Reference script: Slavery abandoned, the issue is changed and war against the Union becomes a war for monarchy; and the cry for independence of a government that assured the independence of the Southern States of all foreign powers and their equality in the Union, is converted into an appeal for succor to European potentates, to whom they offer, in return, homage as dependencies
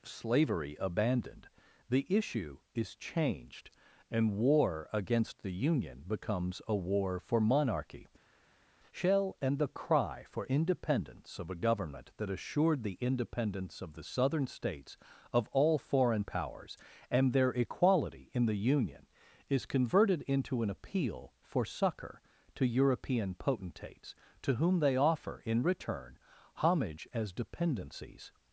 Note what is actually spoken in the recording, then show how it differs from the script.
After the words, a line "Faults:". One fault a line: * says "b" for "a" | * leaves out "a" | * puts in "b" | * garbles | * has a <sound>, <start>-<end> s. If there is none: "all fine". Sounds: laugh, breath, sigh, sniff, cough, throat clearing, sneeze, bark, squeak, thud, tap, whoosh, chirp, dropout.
Slavery abandoned, the issue is changed and war against the Union becomes a war for monarchy; shell and the cry for independence of a government that assured the independence of the Southern States of all foreign powers and their equality in the Union, is converted into an appeal for succor to European potentates, to whom they offer, in return, homage as dependencies
Faults:
* puts in "shell"